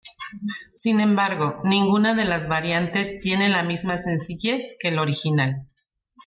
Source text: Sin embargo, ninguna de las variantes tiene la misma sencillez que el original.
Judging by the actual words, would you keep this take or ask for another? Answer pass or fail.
pass